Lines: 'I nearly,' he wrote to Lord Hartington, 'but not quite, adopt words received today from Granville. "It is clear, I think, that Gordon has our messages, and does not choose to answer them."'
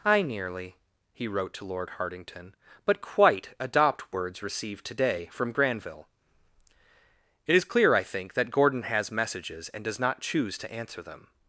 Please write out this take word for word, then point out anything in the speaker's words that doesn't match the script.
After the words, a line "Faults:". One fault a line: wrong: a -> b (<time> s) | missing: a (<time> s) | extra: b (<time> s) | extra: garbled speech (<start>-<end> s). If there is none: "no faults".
'I nearly,' he wrote to Lord Hartington, 'but quite, adopt words received today from Granville. "It is clear, I think, that Gordon has messages, and does not choose to answer them."'
Faults:
missing: not (3.0 s)
missing: our (9.1 s)